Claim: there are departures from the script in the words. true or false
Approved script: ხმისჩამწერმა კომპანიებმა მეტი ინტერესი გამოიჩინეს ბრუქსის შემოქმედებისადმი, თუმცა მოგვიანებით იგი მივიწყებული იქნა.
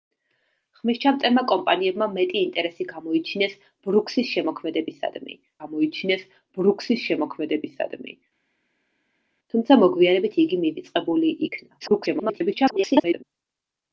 true